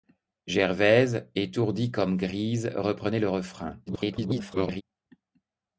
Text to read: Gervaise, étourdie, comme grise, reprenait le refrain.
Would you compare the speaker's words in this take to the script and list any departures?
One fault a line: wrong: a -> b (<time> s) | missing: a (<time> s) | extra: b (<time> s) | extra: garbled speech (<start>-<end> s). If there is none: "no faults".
extra: garbled speech (3.9-4.8 s)